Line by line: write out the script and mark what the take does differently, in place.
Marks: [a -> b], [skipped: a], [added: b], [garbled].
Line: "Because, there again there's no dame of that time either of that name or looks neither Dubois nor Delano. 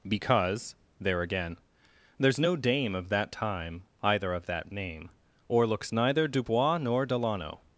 "Because, there again there's no dame of that time either of that name or looks neither Dubois nor Delano.